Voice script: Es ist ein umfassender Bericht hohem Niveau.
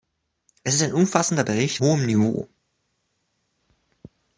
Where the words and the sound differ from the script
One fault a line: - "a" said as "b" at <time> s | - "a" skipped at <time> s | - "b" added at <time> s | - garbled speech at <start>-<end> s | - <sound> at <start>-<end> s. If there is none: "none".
none